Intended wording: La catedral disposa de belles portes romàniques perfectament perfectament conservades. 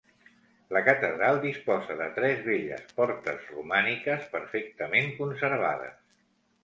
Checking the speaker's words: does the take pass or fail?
fail